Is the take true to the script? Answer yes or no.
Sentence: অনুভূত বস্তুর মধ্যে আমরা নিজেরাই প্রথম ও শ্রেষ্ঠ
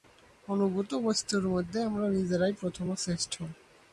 yes